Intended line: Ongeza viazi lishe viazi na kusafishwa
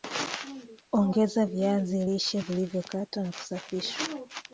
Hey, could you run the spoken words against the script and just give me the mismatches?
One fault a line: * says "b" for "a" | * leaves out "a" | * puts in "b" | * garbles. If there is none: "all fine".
* says "vilivyokatwa" for "viazi"